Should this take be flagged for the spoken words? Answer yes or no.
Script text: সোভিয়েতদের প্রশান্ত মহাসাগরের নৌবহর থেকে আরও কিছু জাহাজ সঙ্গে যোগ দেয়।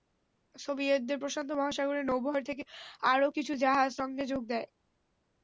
no